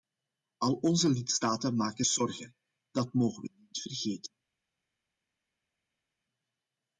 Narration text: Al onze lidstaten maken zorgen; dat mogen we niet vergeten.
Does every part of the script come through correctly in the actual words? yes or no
yes